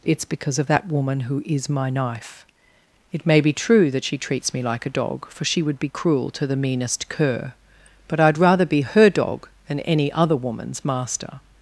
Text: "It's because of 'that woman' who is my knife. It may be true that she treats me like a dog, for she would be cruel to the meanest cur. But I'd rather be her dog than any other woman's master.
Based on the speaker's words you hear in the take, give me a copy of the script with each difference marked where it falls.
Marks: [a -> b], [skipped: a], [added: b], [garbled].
"It's because of 'that woman' who is my knife. It may be true that she treats me like a dog, for she would be cruel to the meanest cur. But I'd rather be her dog than any other woman's master.